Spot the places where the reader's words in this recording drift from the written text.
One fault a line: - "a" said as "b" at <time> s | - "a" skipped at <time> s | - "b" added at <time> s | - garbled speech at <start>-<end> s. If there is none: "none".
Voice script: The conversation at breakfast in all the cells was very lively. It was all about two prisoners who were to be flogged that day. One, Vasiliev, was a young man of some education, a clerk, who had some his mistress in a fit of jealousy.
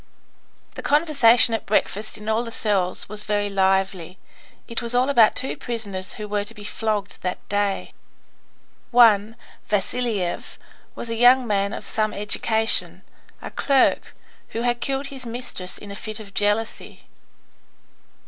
- "some" said as "killed" at 14.8 s